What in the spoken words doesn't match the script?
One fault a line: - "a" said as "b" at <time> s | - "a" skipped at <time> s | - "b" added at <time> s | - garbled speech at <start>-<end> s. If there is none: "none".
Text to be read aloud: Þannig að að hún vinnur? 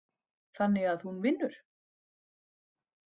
- "að" skipped at 1.1 s